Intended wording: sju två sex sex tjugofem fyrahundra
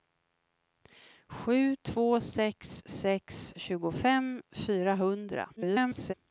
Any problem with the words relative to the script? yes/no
yes